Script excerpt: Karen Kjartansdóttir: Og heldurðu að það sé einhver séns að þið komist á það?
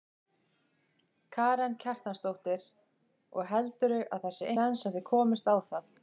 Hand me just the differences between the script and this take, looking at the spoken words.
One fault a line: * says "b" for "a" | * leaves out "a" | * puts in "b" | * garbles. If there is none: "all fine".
* leaves out "einhver"